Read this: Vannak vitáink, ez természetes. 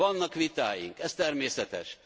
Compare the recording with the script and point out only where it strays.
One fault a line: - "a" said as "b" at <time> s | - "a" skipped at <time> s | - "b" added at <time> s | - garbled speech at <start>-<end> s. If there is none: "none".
none